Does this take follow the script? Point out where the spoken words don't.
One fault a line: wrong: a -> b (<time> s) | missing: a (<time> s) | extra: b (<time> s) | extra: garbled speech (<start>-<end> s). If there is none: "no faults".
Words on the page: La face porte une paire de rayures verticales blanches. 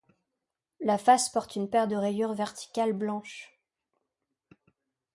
no faults